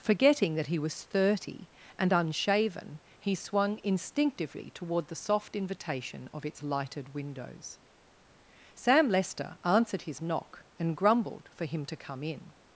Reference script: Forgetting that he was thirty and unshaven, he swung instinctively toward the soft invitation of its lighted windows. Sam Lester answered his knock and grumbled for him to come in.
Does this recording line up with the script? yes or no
yes